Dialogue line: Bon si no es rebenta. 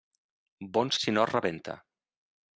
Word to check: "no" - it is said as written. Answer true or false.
true